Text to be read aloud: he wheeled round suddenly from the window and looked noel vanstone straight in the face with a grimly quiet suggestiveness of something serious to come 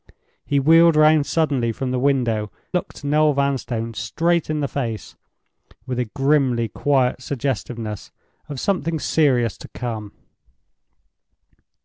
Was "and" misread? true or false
true